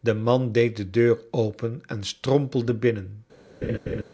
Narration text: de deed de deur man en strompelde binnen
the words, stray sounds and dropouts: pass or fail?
fail